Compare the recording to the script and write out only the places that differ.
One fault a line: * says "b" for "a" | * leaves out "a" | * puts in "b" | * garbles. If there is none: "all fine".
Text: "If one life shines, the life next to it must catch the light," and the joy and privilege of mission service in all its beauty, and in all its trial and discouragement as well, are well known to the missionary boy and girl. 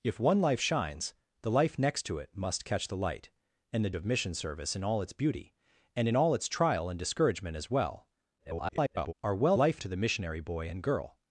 * leaves out "joy and privilege"
* garbles
* says "life" for "known"